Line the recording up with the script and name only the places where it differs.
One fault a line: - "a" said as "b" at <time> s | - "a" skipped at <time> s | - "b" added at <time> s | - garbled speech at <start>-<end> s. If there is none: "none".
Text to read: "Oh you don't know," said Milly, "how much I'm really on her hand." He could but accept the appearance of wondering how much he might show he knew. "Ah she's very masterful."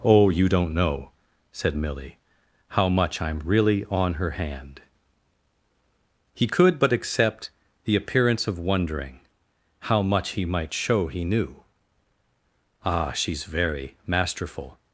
none